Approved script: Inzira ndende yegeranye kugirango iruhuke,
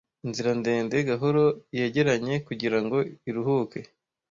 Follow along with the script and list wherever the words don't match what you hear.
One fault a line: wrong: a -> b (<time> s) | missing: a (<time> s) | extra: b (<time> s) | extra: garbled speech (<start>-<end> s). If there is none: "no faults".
extra: gahoro (1.1 s)